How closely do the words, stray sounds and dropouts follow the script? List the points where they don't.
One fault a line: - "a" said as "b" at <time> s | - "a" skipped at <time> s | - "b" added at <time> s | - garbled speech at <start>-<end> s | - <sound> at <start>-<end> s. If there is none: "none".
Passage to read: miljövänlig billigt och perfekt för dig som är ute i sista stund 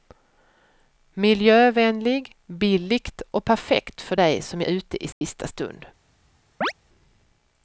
- "är" skipped at 4.6 s
- dropout at 5.1-5.2 s
- chirp at 6.6-6.7 s